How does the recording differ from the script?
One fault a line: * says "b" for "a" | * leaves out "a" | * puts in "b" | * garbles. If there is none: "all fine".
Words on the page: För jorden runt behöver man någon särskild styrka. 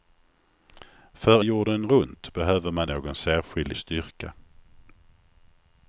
all fine